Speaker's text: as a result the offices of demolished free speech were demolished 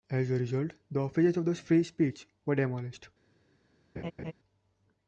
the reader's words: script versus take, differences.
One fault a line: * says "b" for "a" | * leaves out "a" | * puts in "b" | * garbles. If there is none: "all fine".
* says "the" for "demolished"